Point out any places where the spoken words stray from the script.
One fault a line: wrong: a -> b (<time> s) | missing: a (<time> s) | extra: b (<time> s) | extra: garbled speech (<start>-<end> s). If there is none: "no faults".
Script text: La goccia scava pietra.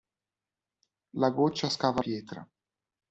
no faults